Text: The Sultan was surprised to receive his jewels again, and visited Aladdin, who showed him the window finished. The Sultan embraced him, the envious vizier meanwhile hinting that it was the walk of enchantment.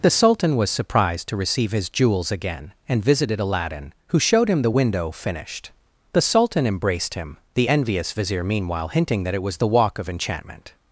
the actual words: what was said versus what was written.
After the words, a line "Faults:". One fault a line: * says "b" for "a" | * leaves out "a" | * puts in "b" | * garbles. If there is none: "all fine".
The Sultan was surprised to receive his jewels again, and visited Aladdin, who showed him the window finished. The Sultan embraced him, the envious vizier meanwhile hinting that it was the walk of enchantment.
Faults:
all fine